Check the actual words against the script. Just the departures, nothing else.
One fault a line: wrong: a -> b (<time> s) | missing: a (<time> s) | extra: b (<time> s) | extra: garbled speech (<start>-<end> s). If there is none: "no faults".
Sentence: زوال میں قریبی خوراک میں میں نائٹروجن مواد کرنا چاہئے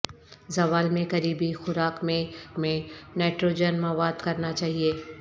no faults